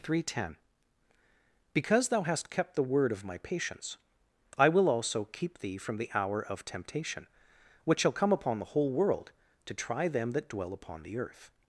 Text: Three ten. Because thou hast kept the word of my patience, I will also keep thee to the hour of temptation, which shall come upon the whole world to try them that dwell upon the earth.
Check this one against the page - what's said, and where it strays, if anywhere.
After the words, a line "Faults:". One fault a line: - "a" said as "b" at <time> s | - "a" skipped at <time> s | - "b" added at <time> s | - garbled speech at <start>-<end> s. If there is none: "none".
Three ten. Because thou hast kept the word of my patience, I will also keep thee from the hour of temptation, which shall come upon the whole world to try them that dwell upon the earth.
Faults:
- "to" said as "from" at 5.8 s